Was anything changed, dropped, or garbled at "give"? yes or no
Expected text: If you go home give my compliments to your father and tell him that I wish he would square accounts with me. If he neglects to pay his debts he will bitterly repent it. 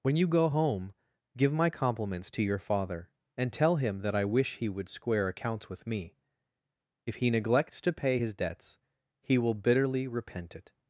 no